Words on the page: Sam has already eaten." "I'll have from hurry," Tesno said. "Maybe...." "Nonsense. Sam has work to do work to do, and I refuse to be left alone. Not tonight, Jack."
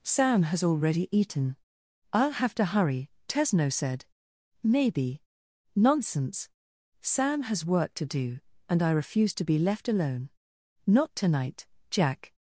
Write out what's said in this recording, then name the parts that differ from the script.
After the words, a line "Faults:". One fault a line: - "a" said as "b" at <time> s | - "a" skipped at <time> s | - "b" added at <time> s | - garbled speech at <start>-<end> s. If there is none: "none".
Sam has already eaten." "I'll have to hurry," Tesno said. "Maybe...." "Nonsense. Sam has work to do, and I refuse to be left alone. Not tonight, Jack."
Faults:
- "from" said as "to" at 2.5 s
- "work to do" skipped at 8.4 s